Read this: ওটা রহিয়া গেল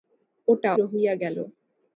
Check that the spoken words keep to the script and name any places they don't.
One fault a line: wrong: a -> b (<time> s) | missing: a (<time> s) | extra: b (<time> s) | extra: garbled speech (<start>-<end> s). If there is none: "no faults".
no faults